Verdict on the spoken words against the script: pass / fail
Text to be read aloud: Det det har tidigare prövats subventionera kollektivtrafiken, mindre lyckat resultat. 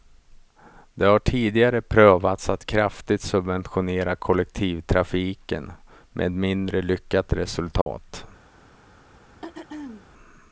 fail